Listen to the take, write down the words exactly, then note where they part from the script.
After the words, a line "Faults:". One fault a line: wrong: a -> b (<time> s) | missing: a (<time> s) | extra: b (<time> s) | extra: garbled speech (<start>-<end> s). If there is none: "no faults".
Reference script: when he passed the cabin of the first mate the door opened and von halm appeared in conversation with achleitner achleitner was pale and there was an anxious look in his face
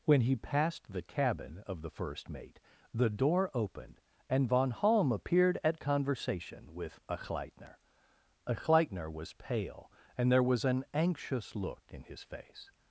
when he passed the cabin of the first mate the door opened and von halm appeared at conversation with achleitner achleitner was pale and there was an anxious look in his face
Faults:
wrong: in -> at (5.6 s)